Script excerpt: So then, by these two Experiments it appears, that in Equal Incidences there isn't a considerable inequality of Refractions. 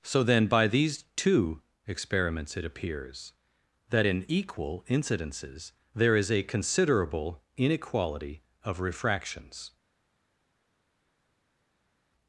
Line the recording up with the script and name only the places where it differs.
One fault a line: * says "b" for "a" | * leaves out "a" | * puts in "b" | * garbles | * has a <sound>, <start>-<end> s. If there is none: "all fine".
* says "is" for "isn't"